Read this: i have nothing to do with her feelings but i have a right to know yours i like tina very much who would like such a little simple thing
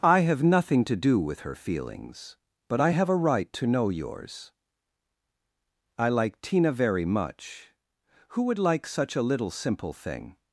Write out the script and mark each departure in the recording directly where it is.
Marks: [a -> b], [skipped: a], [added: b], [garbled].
i have nothing to do with her feelings but i have a right to know yours i like tina very much who would like such a little simple thing